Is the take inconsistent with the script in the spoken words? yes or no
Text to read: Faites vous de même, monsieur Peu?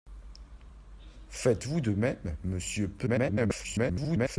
yes